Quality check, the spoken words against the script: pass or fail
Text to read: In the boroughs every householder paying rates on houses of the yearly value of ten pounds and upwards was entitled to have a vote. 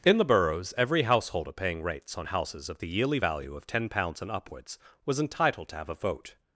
pass